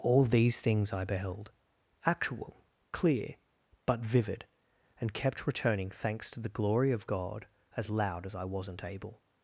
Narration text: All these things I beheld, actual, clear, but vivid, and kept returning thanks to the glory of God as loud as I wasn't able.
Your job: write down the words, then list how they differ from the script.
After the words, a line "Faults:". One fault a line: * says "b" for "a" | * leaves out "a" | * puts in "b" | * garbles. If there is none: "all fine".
All these things I beheld, actual, clear, but vivid, and kept returning thanks to the glory of God as loud as I wasn't able.
Faults:
all fine